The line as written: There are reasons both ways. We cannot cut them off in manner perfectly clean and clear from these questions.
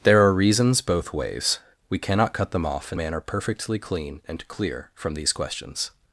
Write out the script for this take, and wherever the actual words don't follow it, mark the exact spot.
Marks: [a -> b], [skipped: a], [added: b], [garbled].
There are reasons both ways. We cannot cut them off in manner perfectly clean and clear from these questions.